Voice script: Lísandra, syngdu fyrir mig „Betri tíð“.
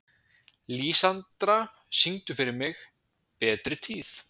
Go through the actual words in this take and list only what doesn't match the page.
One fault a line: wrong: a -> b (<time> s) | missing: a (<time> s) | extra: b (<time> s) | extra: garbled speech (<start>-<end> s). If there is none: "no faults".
no faults